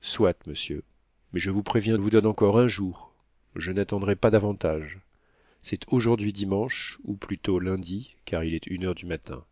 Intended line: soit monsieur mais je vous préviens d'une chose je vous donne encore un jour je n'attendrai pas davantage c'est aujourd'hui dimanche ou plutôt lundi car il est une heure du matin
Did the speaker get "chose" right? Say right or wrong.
wrong